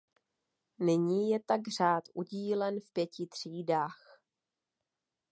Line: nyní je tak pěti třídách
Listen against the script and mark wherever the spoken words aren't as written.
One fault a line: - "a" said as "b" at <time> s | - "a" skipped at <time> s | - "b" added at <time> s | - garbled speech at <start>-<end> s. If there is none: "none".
- "řád udílen v" added at 1.8 s